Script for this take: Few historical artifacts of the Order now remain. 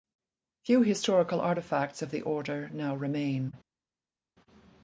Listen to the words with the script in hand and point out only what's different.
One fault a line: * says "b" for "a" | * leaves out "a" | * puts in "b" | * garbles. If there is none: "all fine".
all fine